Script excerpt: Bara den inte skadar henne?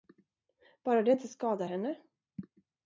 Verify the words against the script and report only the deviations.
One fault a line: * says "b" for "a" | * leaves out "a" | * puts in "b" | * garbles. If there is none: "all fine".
* says "det" for "den"